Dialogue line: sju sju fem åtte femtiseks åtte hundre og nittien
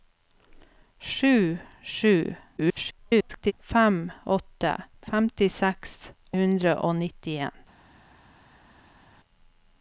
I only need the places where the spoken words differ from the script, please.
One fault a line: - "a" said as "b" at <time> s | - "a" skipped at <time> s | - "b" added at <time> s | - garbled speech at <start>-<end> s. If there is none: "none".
- garbled speech at 2.6-3.5 s
- "åtte" skipped at 6.1 s